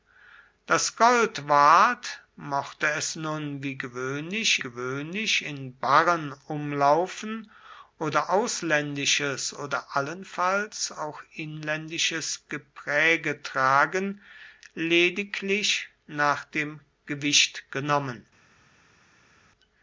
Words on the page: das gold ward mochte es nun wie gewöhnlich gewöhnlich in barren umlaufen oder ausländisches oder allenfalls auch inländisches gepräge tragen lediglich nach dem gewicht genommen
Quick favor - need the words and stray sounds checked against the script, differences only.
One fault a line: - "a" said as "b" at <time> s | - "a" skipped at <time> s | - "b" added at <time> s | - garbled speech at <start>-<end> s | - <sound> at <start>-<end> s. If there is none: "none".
none